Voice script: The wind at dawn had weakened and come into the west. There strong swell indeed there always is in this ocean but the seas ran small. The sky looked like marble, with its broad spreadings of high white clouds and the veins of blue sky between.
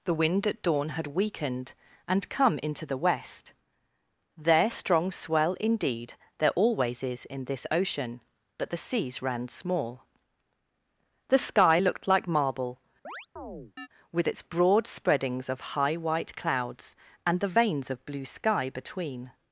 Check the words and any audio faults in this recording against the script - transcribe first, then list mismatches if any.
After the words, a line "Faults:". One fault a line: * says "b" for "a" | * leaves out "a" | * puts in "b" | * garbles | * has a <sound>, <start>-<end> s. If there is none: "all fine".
The wind at dawn had weakened and come into the west. There strong swell indeed there always is in this ocean but the seas ran small. The sky looked like marble, with its broad spreadings of high white clouds and the veins of blue sky between.
Faults:
* has a chirp, 13.0-13.9 s